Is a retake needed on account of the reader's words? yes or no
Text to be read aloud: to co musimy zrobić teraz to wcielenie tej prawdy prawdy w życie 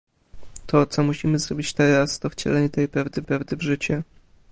no